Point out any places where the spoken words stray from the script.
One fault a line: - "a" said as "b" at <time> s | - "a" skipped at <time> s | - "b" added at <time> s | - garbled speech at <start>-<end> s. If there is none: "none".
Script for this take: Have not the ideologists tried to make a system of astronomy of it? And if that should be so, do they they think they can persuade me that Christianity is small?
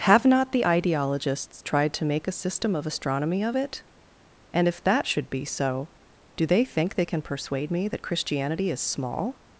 - "they" skipped at 6.6 s